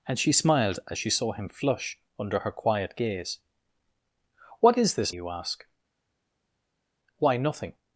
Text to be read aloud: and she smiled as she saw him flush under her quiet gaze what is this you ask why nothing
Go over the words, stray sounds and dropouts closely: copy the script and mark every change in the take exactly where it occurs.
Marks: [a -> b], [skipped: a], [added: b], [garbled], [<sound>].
and she smiled as she saw him flush under her quiet gaze what is this you ask why nothing